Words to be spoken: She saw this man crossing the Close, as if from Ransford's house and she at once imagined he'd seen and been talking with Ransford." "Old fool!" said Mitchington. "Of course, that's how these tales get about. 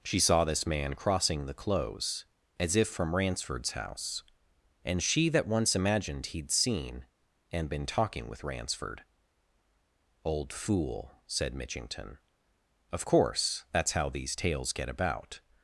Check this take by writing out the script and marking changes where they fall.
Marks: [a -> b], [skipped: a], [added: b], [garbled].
She saw this man crossing the Close, as if from Ransford's house and she [at -> that] once imagined he'd seen and been talking with Ransford." "Old fool!" said Mitchington. "Of course, that's how these tales get about.